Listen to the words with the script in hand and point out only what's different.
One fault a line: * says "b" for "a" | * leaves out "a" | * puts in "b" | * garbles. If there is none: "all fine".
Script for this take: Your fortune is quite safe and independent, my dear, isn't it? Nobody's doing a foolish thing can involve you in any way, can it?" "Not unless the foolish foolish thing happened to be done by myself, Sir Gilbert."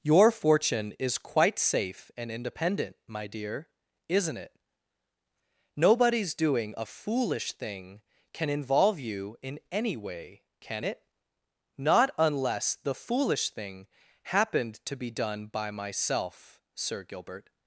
* leaves out "foolish"